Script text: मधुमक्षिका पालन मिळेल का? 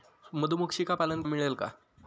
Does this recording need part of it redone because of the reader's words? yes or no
no